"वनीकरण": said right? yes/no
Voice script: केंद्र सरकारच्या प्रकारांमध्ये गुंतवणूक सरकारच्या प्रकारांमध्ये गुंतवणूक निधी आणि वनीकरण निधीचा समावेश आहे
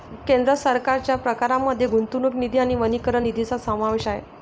yes